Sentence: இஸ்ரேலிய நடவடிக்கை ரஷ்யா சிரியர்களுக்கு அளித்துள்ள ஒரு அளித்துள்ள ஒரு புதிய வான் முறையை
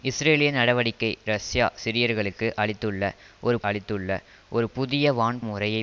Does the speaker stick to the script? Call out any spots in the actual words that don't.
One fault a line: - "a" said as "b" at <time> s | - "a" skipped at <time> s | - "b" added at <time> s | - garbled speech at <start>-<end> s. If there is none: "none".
none